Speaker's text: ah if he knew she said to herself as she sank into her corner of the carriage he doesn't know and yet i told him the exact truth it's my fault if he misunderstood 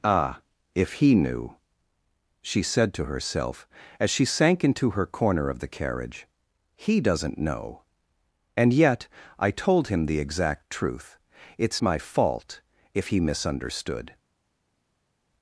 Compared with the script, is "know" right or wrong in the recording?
right